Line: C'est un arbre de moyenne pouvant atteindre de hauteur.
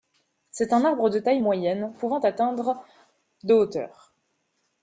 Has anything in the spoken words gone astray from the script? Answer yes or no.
yes